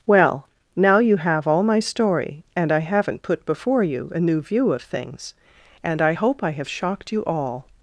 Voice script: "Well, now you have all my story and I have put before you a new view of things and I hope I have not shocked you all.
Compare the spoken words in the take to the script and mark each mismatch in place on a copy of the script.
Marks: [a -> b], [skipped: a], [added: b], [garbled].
"Well, now you have all my story and I [have -> haven't] put before you a new view of things and I hope I have [skipped: not] shocked you all.